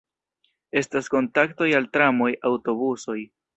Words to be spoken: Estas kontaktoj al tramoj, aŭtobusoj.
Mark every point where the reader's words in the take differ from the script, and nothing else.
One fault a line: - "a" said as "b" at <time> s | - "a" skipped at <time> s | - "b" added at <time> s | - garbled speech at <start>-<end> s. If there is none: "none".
none